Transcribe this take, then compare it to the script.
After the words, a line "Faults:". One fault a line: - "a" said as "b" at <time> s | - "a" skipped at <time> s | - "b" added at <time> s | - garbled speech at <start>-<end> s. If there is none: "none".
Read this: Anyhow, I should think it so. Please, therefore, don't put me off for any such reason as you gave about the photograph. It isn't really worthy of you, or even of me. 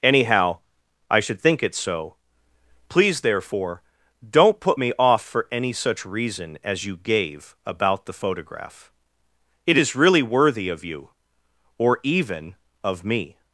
Anyhow, I should think it so. Please, therefore, don't put me off for any such reason as you gave about the photograph. It is really worthy of you, or even of me.
Faults:
- "isn't" said as "is" at 9.8 s